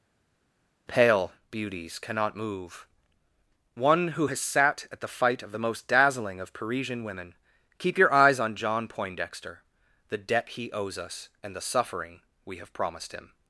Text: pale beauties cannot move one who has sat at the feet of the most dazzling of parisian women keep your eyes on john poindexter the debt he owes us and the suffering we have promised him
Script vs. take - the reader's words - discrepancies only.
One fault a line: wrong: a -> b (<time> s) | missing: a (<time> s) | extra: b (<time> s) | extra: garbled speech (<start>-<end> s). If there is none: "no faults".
wrong: feet -> fight (5.1 s)